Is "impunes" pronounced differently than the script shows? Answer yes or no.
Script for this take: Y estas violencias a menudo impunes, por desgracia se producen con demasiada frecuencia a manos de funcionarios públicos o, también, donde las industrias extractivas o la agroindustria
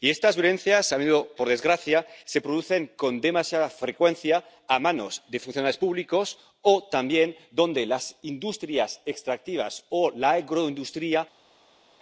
yes